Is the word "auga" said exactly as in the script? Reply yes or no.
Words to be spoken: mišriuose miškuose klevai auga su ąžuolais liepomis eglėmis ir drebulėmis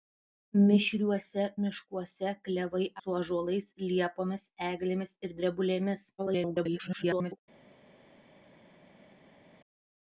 no